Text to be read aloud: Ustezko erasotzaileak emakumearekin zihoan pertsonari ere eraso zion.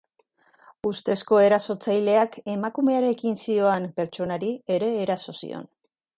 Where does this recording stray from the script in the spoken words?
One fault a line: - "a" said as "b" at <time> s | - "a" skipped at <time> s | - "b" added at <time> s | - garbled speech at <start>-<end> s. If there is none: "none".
none